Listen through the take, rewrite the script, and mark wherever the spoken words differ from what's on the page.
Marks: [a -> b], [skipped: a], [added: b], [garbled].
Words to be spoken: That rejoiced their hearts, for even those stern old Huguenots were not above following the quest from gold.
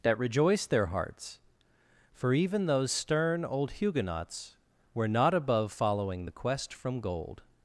That rejoiced their hearts, for even those stern old Huguenots were not above following the quest from gold.